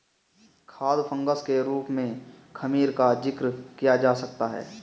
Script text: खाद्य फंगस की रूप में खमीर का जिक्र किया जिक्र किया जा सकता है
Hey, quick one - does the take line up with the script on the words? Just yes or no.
no